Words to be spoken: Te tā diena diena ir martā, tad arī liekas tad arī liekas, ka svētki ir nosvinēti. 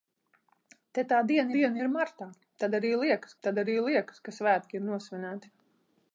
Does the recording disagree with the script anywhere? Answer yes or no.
no